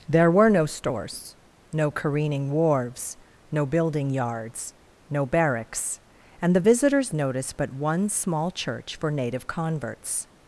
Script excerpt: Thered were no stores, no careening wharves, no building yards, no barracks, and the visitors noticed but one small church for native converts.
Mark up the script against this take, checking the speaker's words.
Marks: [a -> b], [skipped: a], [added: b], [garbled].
[Thered -> There] were no stores, no careening wharves, no building yards, no barracks, and the visitors noticed but one small church for native converts.